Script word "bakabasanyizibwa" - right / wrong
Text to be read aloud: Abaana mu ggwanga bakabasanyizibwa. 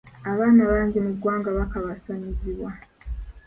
right